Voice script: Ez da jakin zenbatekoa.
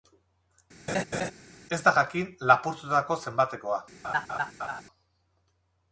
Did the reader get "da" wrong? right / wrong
right